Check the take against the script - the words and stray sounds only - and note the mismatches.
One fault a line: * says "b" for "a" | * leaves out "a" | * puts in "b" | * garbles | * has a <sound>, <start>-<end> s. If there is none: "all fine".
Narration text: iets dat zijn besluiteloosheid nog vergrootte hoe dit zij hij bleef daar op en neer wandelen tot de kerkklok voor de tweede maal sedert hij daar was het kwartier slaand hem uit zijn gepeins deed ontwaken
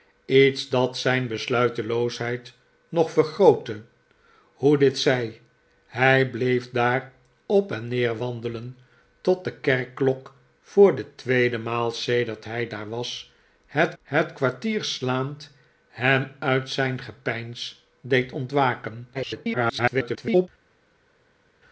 * puts in "het"
* garbles